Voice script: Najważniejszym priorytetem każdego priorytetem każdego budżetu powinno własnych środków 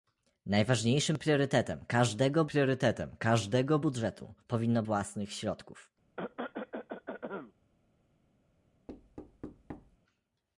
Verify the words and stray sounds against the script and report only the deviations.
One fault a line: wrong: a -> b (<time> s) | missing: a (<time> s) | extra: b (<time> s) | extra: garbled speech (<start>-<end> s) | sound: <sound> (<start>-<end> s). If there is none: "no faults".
sound: cough (6.2-7.5 s)
sound: thud (8.9-10.0 s)